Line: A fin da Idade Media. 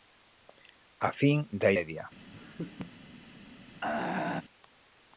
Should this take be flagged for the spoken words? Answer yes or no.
yes